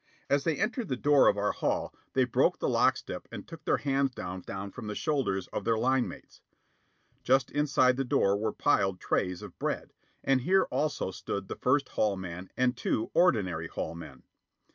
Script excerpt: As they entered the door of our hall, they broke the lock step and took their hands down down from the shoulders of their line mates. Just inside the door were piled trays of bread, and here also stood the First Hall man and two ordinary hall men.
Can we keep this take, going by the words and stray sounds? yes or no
yes